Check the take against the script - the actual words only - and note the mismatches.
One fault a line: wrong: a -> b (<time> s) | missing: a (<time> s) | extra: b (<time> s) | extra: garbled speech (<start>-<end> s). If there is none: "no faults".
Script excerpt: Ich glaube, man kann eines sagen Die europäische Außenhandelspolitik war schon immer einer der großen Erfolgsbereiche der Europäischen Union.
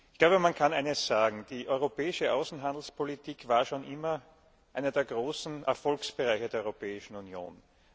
no faults